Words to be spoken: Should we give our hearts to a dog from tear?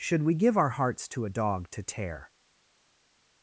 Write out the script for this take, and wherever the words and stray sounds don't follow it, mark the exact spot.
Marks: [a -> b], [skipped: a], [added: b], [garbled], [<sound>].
Should we give our hearts to a dog [from -> to] tear?